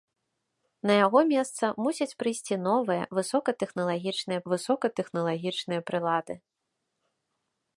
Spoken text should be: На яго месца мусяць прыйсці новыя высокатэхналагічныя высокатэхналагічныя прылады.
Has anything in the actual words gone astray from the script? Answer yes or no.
no